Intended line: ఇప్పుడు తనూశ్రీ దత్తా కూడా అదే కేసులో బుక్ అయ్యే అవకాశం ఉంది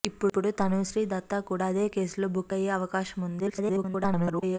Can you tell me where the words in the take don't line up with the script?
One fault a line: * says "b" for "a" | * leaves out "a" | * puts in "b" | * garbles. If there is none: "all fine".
* garbles